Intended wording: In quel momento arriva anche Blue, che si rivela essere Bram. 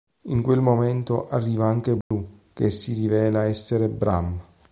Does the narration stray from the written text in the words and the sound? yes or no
yes